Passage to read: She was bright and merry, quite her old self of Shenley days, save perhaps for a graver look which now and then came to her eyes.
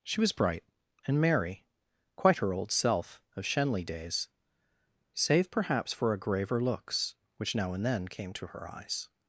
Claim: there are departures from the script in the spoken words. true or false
true